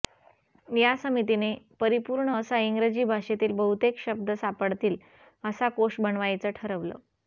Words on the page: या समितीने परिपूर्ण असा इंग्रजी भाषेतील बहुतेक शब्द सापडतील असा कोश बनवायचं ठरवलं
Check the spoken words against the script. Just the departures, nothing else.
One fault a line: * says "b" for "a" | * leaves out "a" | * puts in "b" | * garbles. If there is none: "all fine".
all fine